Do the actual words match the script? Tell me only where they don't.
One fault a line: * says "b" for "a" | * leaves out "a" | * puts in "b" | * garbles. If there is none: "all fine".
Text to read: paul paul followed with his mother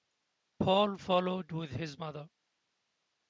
* leaves out "paul"